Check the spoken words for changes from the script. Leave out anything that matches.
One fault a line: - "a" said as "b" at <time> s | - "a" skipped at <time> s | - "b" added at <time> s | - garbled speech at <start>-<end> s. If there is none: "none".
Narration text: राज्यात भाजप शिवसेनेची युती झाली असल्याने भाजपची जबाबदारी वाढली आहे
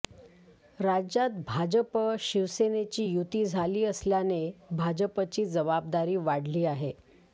none